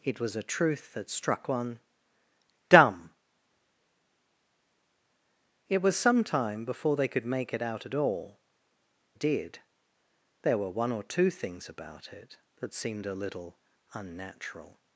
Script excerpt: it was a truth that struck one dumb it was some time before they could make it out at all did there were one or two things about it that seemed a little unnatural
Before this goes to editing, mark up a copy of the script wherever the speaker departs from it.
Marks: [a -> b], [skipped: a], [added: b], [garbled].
it was a truth that struck one dumb it was some time before they could make it out at all did there were one or two things about it that seemed a little unnatural